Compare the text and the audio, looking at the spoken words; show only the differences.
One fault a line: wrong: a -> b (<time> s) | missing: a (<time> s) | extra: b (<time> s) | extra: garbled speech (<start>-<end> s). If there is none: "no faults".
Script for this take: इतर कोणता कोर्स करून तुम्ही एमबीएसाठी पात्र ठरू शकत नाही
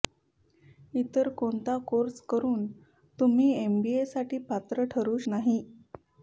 missing: शकत (5.2 s)